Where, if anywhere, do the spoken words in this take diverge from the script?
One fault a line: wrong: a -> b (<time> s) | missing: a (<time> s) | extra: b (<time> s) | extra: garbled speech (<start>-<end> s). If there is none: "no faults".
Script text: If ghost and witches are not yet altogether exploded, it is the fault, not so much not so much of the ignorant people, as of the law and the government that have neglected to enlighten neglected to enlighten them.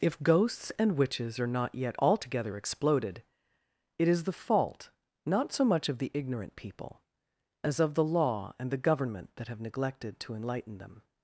wrong: ghost -> ghosts (0.2 s)
missing: not so much (5.9 s)
missing: neglected to enlighten (10.8 s)